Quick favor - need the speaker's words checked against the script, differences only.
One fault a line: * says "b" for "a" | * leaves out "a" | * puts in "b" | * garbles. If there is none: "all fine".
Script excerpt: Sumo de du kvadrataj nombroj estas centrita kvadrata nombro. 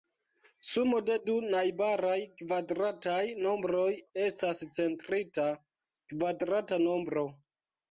* puts in "najbaraj"